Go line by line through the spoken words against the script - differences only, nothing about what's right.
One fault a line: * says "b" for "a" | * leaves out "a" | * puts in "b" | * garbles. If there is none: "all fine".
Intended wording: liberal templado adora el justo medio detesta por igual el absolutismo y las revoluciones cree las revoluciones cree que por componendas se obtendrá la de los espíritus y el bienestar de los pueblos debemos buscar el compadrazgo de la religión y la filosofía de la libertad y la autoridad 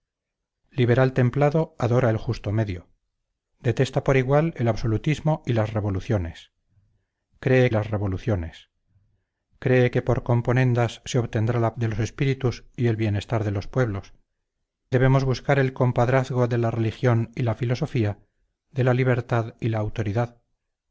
all fine